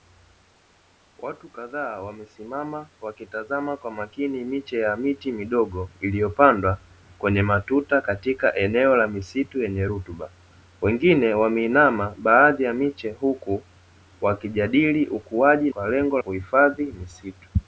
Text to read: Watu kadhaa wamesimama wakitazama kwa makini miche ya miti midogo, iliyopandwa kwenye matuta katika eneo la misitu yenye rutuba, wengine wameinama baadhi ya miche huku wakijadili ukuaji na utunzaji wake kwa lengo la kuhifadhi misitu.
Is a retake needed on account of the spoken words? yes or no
yes